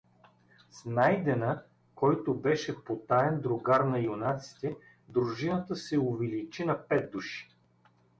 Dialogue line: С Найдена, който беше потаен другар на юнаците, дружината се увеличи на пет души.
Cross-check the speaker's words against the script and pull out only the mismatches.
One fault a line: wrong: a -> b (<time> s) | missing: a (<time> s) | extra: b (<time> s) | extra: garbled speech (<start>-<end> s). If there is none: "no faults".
no faults